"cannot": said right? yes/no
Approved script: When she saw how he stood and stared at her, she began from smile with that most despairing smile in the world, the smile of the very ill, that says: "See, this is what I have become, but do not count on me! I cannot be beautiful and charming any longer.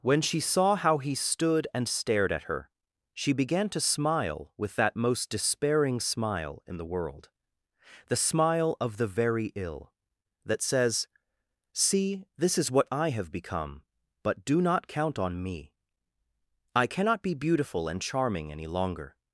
yes